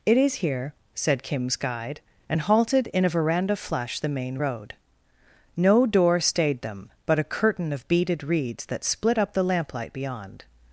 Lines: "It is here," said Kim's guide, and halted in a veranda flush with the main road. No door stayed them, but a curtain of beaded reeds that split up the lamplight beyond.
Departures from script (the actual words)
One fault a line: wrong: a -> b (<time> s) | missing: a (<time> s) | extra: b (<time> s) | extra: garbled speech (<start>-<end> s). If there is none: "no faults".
missing: with (4.0 s)